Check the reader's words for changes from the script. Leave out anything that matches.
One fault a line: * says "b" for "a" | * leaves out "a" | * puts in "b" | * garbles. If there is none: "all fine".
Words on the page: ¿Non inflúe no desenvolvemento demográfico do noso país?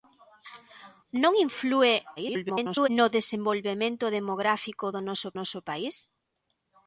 * garbles
* puts in "noso"